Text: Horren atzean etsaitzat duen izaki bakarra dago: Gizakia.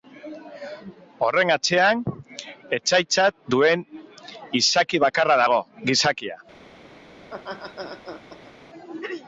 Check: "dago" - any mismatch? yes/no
no